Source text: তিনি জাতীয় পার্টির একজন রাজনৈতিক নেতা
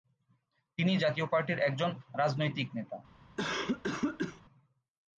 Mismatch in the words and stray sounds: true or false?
true